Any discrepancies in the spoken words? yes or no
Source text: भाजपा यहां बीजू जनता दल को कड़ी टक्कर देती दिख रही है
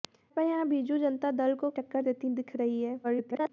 yes